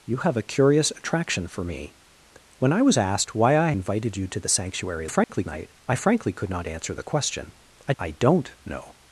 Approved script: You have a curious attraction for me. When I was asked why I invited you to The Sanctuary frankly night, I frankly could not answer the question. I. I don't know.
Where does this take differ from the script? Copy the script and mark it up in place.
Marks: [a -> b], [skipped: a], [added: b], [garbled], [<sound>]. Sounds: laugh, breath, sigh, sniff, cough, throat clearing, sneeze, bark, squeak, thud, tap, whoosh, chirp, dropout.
You have a curious attraction for me. When I was asked why I invited you to The Sanctuary frankly [dropout] night, I frankly could not answer the question. I. I don't know.